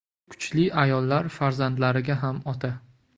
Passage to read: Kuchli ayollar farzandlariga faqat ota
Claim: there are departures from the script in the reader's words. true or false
true